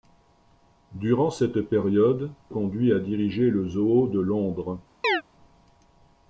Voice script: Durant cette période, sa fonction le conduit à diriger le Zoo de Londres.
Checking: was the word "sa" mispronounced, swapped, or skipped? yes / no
yes